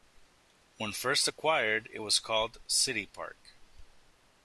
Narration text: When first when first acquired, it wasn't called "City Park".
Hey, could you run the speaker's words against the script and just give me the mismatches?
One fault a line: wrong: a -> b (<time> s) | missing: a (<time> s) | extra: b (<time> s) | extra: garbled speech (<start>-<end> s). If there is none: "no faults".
missing: when first (1.3 s)
wrong: wasn't -> was (2.0 s)